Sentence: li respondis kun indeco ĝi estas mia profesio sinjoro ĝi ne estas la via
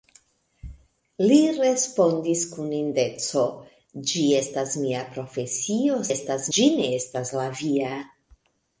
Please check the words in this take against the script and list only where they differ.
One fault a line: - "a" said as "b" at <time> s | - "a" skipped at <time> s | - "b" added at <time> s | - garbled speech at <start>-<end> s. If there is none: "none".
- "sinjoro" said as "estas" at 6.1 s